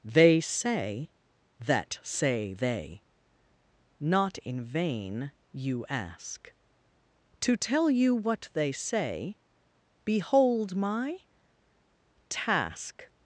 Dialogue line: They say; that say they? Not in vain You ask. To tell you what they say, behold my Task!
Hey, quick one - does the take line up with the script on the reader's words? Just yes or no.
yes